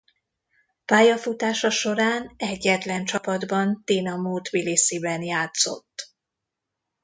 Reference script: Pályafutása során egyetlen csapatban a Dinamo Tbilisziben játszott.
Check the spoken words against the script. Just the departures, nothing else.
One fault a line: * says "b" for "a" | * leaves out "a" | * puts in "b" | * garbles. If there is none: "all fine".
* leaves out "a"